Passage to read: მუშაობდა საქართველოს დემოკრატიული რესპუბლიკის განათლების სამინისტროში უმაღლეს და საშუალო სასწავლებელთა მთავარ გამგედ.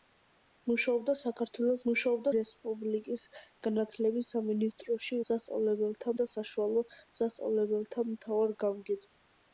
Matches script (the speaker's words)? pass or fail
fail